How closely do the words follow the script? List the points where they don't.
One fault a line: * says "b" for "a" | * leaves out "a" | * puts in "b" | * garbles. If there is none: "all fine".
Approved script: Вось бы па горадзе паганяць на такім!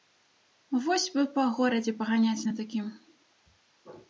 all fine